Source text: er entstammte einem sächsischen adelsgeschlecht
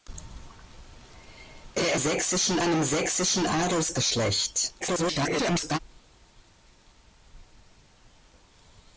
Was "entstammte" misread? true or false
true